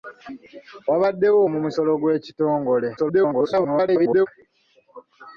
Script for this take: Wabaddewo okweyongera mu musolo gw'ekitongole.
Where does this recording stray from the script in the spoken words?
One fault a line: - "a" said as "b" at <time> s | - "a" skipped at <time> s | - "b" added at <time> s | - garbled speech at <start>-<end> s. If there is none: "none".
- "okweyongera" skipped at 1.4 s
- garbled speech at 3.0-4.3 s